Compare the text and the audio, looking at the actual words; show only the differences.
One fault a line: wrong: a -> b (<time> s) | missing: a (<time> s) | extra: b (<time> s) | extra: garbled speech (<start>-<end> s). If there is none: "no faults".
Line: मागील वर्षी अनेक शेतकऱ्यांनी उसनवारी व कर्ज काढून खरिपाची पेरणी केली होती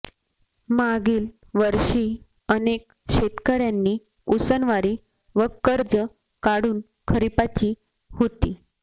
missing: पेरणी केली (7.7 s)